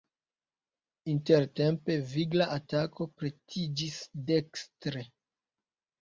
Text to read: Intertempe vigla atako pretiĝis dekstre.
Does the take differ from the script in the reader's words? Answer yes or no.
no